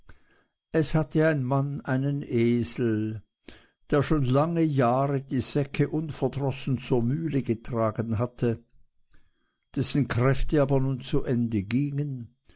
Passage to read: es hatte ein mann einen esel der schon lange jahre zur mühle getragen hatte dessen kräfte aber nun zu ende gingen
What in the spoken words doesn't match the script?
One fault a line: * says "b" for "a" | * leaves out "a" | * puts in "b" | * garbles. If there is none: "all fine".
* puts in "die säcke unverdrossen"